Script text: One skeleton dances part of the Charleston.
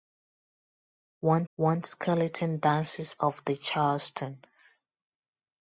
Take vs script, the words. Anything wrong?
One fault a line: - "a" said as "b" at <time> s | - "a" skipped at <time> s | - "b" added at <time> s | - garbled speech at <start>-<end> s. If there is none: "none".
- "one" added at 1.5 s
- "part" skipped at 3.1 s